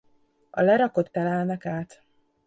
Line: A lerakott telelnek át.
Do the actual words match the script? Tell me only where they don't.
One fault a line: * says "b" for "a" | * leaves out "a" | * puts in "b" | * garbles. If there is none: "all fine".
all fine